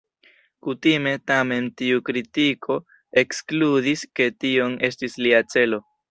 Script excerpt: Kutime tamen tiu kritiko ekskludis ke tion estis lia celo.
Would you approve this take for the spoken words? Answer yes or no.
yes